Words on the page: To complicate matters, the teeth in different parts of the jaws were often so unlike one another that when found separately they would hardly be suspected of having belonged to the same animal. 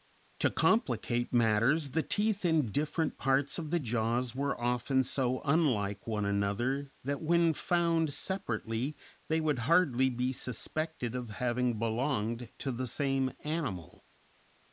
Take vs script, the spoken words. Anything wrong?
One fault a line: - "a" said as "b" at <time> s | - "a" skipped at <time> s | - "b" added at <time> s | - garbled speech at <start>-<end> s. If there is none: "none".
none